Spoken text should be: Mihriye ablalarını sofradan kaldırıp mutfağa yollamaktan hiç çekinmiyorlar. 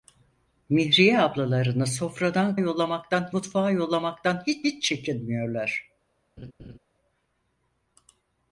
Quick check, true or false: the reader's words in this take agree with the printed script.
false